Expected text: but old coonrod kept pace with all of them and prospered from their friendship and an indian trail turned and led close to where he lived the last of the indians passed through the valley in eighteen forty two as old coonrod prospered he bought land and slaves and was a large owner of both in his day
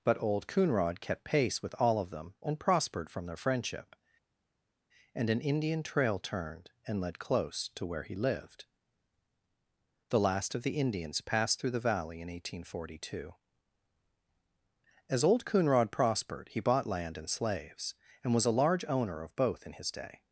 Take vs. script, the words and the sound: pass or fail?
pass